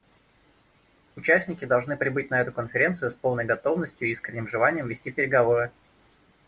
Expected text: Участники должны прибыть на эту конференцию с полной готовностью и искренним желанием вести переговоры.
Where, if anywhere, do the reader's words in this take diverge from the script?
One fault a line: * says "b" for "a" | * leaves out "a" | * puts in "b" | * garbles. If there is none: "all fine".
all fine